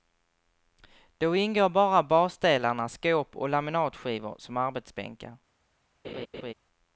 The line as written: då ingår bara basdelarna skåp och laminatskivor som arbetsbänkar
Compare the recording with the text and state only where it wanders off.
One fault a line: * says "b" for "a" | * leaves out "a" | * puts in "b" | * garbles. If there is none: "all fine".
all fine